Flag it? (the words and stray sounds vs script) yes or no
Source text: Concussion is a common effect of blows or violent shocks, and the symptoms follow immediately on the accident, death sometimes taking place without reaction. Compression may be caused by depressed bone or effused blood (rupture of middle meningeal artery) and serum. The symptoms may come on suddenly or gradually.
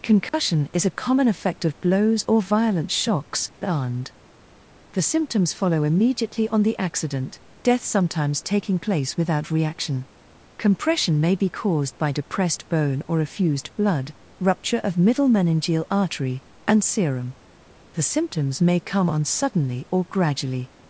yes